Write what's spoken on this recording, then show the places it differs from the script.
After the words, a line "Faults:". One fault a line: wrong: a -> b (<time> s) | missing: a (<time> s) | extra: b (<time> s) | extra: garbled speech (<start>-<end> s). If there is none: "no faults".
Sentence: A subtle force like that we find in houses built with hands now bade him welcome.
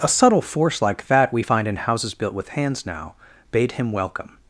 A subtle force like that we find in houses built with hands now bade him welcome.
Faults:
no faults